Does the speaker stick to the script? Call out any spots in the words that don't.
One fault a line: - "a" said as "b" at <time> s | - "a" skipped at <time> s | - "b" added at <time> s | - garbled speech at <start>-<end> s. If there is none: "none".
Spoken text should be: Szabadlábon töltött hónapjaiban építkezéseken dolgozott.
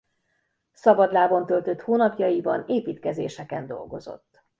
none